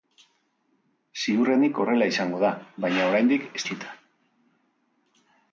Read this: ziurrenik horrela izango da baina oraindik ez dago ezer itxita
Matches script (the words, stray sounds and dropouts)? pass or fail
fail